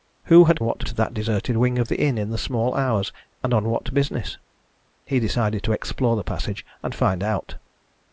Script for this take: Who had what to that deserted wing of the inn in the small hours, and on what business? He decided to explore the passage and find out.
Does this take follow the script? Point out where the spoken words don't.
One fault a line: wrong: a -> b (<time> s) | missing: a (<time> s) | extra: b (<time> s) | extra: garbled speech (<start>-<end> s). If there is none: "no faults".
no faults